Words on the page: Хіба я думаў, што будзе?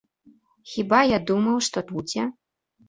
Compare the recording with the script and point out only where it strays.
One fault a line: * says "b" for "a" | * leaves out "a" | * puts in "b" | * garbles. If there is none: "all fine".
all fine